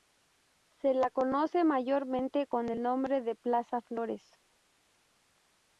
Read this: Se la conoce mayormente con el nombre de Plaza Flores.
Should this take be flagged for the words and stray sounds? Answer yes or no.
no